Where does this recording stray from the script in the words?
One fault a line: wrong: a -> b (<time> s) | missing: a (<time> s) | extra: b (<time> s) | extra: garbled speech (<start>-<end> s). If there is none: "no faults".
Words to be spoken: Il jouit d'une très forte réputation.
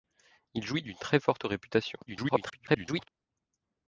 extra: garbled speech (2.1-3.1 s)